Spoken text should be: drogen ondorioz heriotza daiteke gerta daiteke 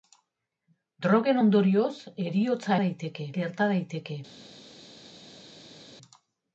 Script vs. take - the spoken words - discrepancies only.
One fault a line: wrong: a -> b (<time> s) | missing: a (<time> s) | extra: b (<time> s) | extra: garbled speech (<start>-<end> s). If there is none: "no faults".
no faults